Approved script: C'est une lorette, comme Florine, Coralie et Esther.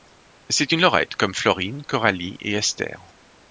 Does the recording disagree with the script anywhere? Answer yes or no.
no